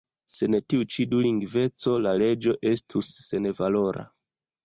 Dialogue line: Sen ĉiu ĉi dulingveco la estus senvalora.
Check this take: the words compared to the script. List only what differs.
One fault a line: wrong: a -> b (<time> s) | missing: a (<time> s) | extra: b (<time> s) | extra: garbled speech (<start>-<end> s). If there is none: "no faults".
wrong: ĉiu -> tiu (0.7 s)
extra: leĝo (2.2 s)